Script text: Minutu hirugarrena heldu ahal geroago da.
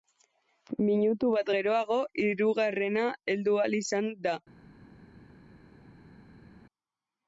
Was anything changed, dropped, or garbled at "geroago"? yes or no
yes